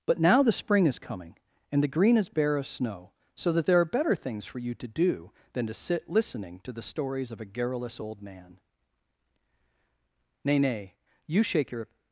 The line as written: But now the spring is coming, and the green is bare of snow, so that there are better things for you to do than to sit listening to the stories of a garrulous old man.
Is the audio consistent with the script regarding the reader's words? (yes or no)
no